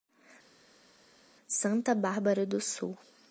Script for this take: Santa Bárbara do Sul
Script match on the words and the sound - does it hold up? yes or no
yes